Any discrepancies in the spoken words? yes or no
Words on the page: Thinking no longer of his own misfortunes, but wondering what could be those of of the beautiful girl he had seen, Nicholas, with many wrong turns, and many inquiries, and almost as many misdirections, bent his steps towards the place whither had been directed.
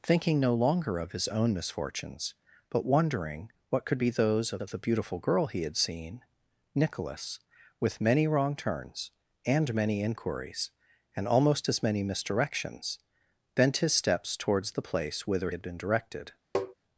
no